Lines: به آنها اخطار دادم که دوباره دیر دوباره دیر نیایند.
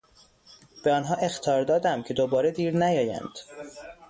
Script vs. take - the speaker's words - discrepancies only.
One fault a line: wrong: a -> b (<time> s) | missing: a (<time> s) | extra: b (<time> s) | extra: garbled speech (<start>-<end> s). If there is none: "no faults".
missing: دوباره دیر (2.8 s)